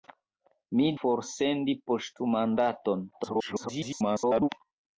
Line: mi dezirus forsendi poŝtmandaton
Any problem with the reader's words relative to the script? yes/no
yes